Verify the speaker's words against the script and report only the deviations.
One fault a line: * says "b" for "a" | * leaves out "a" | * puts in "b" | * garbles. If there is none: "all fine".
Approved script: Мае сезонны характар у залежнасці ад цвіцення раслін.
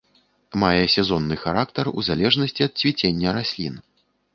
all fine